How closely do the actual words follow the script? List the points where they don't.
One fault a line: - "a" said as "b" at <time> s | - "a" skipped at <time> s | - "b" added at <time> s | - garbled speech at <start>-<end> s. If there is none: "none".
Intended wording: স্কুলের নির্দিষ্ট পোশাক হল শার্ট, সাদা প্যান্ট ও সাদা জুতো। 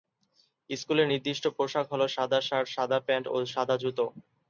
- "সাদা" added at 2.1 s